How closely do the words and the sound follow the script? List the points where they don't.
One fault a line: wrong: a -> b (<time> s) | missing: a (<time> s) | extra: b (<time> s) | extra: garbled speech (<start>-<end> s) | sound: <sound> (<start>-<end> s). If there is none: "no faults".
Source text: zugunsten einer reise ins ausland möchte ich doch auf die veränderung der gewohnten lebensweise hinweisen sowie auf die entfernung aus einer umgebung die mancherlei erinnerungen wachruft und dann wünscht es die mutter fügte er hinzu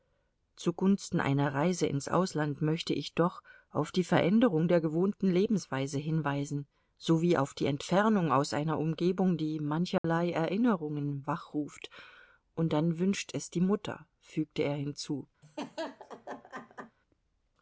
sound: dropout (10.0-10.0 s)
sound: laugh (15.4-17.0 s)